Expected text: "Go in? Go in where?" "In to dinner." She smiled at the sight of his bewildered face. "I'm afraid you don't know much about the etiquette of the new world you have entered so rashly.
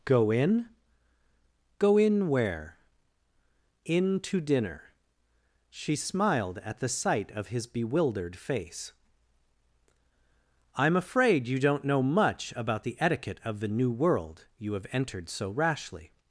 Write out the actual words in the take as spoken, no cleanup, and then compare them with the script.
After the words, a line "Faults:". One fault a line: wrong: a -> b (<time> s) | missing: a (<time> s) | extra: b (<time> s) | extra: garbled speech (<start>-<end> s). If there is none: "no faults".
"Go in? Go in where?" "In to dinner." She smiled at the sight of his bewildered face. "I'm afraid you don't know much about the etiquette of the new world you have entered so rashly.
Faults:
no faults